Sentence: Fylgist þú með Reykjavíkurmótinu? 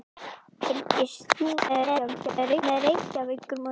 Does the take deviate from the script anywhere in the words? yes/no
yes